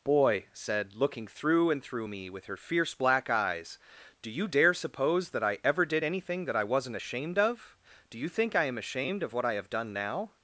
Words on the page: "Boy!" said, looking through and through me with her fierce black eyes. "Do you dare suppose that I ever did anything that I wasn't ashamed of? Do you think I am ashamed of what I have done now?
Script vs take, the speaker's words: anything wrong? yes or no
no